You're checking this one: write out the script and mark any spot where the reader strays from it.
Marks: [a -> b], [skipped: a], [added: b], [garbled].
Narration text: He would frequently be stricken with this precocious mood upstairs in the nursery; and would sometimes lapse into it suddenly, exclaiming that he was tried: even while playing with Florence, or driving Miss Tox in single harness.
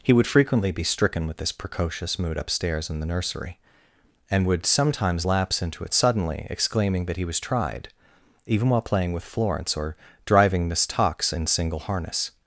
He would frequently be stricken with this precocious mood upstairs in the nursery; and would sometimes lapse into it suddenly, exclaiming that he was tried: even while playing with Florence, or driving Miss Tox in single harness.